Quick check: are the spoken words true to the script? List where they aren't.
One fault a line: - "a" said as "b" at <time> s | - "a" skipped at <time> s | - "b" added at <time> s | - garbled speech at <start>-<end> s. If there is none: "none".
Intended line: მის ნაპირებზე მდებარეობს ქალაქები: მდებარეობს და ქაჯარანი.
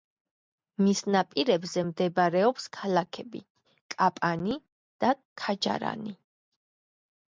- "მდებარეობს" said as "კაპანი" at 4.0 s